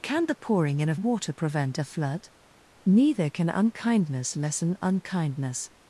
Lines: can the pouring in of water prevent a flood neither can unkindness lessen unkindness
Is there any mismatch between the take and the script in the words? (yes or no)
no